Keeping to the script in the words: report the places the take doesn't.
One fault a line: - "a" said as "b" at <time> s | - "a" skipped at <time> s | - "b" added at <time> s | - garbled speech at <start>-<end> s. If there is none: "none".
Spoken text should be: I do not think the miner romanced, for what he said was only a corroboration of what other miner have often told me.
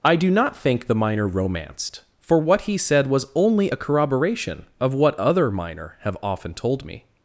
none